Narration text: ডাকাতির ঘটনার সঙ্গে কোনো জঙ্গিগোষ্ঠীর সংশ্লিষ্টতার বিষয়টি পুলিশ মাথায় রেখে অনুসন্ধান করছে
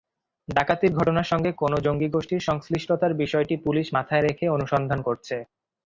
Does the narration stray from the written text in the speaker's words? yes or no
no